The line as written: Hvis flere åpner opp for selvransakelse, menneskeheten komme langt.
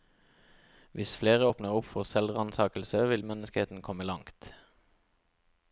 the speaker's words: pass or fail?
fail